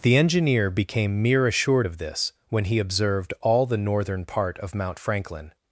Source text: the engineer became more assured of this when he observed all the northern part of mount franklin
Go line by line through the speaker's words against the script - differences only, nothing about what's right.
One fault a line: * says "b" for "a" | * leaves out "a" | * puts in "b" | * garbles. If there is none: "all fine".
* says "mere" for "more"